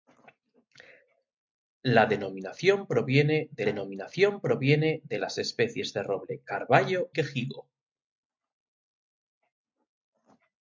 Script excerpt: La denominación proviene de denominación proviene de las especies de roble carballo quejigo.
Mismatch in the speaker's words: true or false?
false